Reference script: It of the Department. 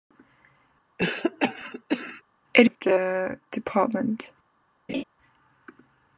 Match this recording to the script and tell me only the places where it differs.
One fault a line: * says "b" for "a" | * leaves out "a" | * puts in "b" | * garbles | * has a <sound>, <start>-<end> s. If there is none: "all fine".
* has a cough, 1.0-2.2 s
* has a laugh, 4.9-5.0 s